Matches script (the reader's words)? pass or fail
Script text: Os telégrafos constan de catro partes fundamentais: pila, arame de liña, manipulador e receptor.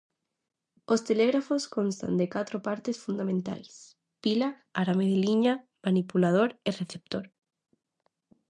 pass